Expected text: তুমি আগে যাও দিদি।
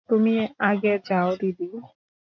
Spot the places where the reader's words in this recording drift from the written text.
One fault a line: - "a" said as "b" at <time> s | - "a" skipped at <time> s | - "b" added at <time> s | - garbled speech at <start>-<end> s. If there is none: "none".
none